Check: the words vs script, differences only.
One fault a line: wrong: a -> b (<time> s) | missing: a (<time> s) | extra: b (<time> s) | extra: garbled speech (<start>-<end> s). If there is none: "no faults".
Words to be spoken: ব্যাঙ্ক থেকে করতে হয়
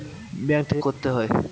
no faults